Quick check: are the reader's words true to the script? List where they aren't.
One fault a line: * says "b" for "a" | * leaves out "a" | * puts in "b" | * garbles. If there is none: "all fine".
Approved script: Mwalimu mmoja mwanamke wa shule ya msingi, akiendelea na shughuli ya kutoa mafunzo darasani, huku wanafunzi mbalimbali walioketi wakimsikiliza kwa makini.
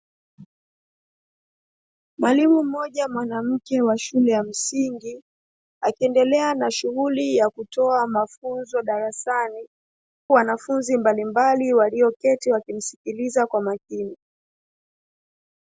* leaves out "huku"